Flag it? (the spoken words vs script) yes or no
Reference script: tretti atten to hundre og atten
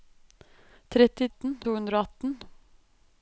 no